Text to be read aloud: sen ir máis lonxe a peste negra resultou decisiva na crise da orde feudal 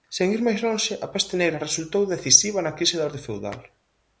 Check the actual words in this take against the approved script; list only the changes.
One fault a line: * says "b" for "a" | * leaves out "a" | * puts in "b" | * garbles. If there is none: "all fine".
all fine